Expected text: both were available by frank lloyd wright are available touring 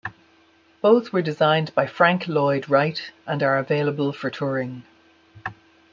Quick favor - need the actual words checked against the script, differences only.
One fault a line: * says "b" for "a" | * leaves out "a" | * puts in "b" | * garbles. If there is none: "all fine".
* says "designed" for "available"
* puts in "and"
* puts in "for"